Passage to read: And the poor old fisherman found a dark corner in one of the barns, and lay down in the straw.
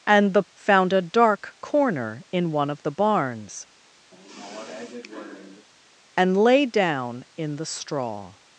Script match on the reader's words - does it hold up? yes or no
no